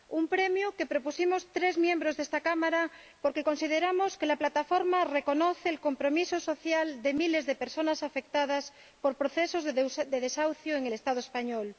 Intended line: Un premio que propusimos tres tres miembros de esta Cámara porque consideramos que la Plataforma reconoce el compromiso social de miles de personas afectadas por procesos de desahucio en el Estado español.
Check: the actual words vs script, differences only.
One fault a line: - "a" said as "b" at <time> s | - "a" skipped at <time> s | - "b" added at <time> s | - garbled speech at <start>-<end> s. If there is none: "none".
- "tres" skipped at 1.8 s